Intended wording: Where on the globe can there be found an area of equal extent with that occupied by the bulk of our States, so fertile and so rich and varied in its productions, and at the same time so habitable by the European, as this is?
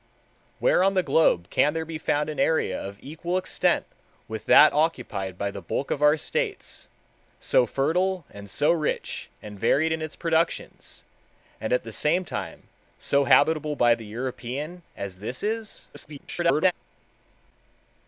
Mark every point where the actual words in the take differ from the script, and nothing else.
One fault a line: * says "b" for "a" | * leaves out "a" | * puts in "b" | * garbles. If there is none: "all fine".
* garbles